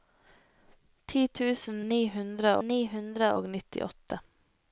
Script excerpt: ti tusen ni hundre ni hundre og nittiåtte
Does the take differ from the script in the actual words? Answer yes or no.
no